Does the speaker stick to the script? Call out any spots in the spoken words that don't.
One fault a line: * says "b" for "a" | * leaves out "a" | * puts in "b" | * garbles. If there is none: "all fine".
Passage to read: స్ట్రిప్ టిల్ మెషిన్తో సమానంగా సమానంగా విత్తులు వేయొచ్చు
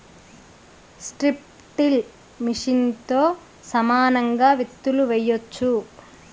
* leaves out "సమానంగా"